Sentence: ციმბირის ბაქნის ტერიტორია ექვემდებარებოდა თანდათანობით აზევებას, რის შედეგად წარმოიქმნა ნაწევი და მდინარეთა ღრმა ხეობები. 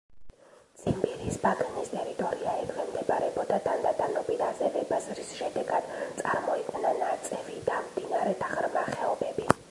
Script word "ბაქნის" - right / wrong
right